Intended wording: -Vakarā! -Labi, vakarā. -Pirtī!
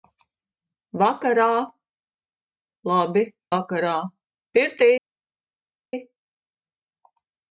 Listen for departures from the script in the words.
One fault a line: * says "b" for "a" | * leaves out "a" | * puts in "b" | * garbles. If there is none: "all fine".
all fine